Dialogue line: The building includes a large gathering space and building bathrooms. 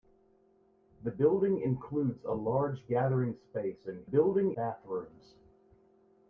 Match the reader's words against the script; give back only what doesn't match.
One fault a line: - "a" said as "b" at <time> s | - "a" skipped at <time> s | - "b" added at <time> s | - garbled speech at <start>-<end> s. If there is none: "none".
none